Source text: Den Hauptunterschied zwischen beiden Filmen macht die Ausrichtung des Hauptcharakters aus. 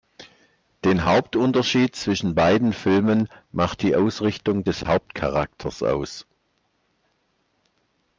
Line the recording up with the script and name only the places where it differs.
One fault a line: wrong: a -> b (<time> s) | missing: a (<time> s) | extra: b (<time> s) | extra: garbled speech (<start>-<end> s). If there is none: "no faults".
no faults